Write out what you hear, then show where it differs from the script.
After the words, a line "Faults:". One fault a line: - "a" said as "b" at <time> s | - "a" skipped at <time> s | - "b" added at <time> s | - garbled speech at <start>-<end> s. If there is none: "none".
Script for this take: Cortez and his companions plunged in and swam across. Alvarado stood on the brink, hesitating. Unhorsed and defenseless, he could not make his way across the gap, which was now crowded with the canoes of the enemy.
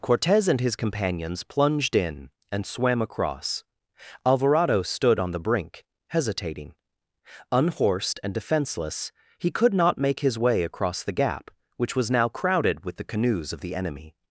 Cortez and his companions plunged in and swam across. Alvarado stood on the brink, hesitating. Unhorsed and defenseless, he could not make his way across the gap, which was now crowded with the canoes of the enemy.
Faults:
none